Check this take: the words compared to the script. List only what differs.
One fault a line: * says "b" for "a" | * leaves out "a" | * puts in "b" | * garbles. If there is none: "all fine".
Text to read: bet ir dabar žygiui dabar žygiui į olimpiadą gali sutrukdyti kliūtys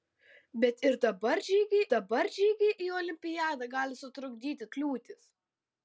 all fine